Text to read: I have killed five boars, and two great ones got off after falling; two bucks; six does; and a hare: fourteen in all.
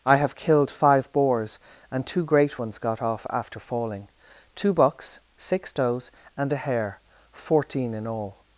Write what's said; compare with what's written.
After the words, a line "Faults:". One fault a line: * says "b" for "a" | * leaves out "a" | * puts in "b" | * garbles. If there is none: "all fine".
I have killed five boars, and two great ones got off after falling; two bucks; six does; and a hare: fourteen in all.
Faults:
all fine